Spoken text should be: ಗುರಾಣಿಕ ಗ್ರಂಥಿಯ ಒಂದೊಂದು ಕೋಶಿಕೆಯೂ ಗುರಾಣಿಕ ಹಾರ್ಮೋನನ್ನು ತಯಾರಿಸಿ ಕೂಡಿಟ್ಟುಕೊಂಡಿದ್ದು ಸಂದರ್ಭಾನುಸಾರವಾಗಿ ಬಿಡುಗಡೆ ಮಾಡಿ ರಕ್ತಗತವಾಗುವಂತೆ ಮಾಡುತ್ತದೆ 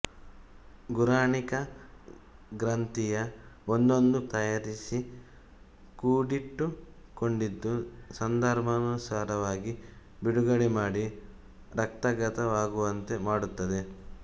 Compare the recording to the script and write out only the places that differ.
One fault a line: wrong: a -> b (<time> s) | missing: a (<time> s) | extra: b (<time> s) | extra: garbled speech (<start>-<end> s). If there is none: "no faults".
missing: ಕೋಶಿಕೆಯೂ ಗುರಾಣಿಕ ಹಾರ್ಮೋನನ್ನು (4.2 s)